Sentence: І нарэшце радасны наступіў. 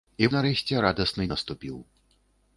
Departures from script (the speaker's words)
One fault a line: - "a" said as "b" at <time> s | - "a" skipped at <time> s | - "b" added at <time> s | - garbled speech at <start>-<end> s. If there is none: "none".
none